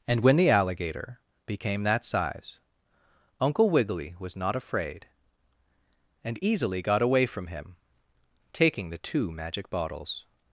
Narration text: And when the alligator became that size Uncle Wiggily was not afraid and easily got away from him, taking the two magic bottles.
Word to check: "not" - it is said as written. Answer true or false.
true